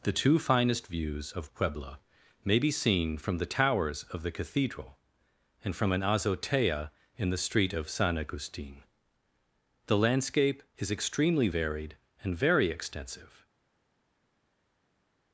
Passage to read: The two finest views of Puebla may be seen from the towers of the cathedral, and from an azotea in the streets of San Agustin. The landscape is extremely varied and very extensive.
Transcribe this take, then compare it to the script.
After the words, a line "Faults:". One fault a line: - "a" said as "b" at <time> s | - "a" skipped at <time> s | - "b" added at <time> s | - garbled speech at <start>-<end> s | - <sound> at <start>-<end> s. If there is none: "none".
The two finest views of Puebla may be seen from the towers of the cathedral, and from an azotea in the street of San Agustin. The landscape is extremely varied and very extensive.
Faults:
- "streets" said as "street" at 7.4 s